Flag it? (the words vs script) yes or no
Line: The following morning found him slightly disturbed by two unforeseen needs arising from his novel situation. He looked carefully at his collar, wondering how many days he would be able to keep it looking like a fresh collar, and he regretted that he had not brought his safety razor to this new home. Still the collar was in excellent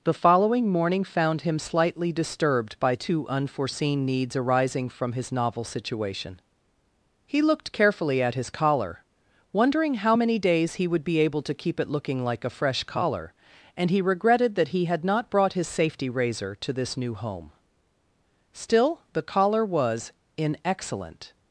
no